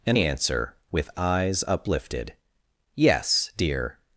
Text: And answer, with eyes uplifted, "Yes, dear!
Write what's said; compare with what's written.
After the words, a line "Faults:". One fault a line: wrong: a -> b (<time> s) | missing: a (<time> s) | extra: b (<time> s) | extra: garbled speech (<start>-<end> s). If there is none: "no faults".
And answer, with eyes uplifted, "Yes, dear!
Faults:
no faults